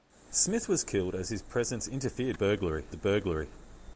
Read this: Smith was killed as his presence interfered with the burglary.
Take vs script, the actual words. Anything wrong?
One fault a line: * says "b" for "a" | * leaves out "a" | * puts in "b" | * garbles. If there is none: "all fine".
* says "burglary" for "with"